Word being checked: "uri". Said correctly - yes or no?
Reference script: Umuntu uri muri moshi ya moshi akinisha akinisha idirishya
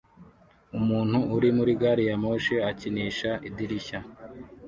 yes